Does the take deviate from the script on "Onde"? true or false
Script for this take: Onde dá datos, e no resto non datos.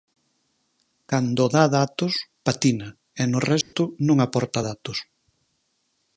true